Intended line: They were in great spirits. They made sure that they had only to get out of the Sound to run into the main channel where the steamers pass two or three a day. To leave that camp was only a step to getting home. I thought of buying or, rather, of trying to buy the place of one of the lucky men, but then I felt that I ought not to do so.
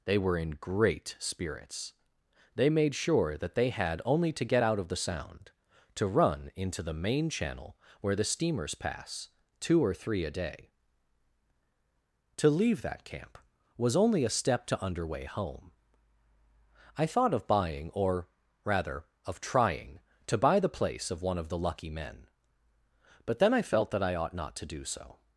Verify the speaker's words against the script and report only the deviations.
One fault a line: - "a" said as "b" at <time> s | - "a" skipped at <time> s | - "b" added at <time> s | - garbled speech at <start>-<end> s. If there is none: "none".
- "getting" said as "underway" at 14.8 s